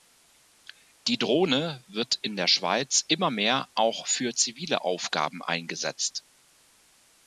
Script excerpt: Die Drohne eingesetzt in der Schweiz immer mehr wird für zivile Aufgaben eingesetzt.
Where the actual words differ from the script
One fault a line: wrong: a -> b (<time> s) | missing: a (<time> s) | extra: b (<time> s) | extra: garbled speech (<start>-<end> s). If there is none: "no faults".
wrong: eingesetzt -> wird (1.9 s)
wrong: wird -> auch (3.8 s)